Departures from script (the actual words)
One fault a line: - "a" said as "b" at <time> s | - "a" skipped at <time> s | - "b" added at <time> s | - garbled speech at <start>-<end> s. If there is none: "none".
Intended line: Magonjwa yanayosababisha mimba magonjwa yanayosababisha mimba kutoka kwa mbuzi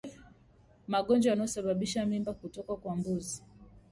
- "magonjwa yanayosababisha mimba" skipped at 2.3 s